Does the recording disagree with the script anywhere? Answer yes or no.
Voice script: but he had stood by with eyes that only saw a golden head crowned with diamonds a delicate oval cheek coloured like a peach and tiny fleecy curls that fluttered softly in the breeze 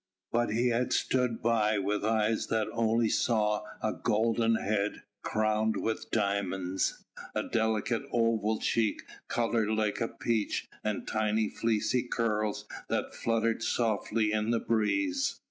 no